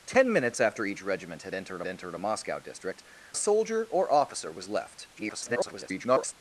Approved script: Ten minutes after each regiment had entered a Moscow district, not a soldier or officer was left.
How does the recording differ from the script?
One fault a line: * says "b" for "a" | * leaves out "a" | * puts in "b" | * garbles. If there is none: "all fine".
* puts in "entered"
* leaves out "not"
* garbles